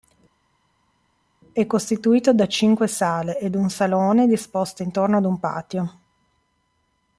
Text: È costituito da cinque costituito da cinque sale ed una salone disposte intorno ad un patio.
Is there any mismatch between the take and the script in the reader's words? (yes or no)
yes